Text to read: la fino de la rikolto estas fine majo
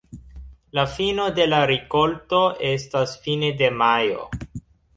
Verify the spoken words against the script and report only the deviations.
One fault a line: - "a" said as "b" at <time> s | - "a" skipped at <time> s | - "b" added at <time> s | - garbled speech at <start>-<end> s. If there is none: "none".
- "de" added at 3.6 s